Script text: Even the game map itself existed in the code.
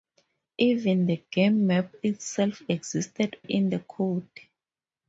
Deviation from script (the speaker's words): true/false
false